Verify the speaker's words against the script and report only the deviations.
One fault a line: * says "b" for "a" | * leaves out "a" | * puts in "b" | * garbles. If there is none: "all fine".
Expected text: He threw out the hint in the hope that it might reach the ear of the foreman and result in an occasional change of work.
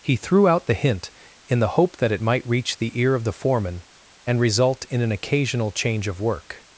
all fine